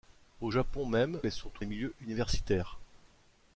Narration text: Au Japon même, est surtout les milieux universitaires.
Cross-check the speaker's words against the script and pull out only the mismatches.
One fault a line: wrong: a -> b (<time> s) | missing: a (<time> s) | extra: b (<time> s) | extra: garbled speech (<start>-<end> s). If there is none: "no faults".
no faults